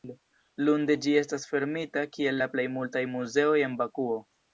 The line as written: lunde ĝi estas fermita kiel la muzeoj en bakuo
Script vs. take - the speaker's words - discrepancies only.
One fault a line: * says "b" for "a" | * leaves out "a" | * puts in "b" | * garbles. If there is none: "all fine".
* puts in "plej multaj"